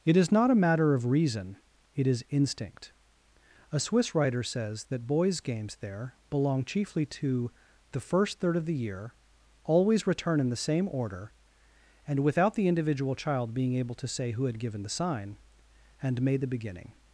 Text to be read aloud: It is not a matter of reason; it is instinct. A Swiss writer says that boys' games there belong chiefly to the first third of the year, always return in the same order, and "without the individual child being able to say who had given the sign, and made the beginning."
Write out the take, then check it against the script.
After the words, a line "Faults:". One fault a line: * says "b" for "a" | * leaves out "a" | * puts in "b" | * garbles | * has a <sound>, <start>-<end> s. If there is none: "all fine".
It is not a matter of reason; it is instinct. A Swiss writer says that boys' games there belong chiefly to the first third of the year, always return in the same order, and "without the individual child being able to say who had given the sign, and made the beginning."
Faults:
all fine